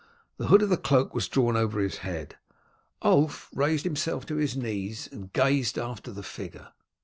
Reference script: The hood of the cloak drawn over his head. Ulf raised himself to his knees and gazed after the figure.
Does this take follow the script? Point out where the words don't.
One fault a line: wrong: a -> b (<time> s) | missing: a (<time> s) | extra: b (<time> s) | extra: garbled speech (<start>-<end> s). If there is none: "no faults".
extra: was (1.1 s)